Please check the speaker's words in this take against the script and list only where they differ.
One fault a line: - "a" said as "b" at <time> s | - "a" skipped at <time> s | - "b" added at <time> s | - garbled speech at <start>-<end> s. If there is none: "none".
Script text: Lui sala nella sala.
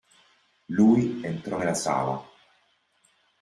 - "sala" said as "entrò" at 1.2 s